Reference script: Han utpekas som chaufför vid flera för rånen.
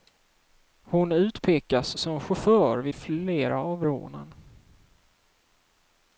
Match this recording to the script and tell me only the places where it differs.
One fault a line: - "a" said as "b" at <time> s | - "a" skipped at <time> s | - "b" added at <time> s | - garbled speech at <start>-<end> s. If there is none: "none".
- "Han" said as "Hon" at 0.8 s
- "för" said as "av" at 3.6 s